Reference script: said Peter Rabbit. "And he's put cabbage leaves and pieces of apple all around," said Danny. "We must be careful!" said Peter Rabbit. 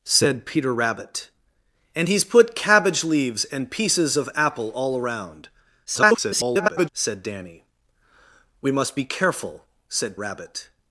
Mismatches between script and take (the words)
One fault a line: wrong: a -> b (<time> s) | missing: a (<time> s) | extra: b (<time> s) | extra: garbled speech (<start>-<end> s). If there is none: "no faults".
extra: garbled speech (5.8-6.9 s)
missing: Peter (10.2 s)